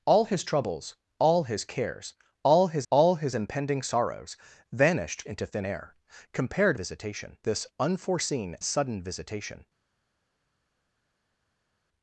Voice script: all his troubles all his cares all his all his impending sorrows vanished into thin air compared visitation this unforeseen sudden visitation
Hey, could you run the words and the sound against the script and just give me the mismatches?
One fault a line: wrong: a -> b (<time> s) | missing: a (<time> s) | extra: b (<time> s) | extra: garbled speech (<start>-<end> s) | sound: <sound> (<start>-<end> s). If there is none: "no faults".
no faults